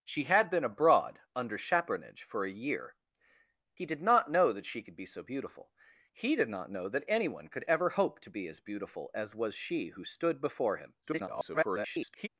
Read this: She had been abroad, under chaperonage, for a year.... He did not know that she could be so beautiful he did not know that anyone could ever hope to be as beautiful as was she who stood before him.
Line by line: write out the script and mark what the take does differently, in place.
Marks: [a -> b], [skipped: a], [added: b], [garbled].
She had been abroad, under chaperonage, for a year.... He did not know that she could be so beautiful he did not know that anyone could ever hope to be as beautiful as was she who stood before him. [garbled]